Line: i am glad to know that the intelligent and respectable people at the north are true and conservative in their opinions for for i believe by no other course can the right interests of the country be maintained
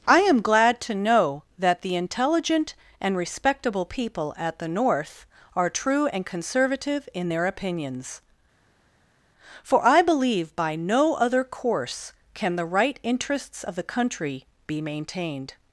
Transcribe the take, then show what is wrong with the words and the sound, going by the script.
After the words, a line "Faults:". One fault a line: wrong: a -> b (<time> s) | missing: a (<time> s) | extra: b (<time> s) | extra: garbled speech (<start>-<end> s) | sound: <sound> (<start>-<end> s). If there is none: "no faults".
i am glad to know that the intelligent and respectable people at the north are true and conservative in their opinions for i believe by no other course can the right interests of the country be maintained
Faults:
missing: for (9.8 s)